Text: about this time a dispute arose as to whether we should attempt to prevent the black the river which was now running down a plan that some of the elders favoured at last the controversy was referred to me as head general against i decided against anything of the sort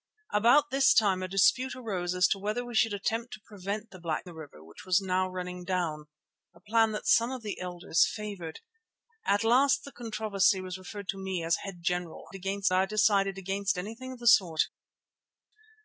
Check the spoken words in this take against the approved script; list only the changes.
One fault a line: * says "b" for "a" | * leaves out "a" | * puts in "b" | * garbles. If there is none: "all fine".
all fine